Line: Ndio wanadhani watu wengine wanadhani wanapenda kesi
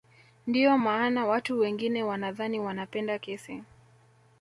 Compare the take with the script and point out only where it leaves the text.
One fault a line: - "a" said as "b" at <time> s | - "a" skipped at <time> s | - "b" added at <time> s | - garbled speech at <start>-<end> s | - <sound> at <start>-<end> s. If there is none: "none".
- "wanadhani" said as "maana" at 0.8 s